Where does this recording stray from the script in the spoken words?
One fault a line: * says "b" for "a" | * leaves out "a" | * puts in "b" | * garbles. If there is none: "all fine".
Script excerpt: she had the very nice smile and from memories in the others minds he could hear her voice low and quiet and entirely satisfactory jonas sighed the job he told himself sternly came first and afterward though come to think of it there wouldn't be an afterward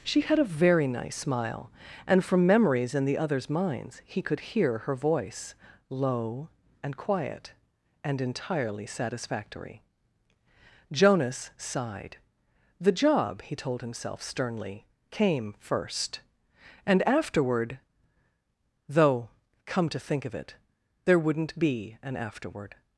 * says "a" for "the"